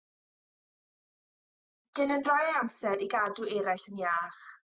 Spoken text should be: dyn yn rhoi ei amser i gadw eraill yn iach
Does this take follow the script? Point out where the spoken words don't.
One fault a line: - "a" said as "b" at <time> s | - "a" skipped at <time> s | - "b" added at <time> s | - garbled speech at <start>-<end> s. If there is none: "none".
none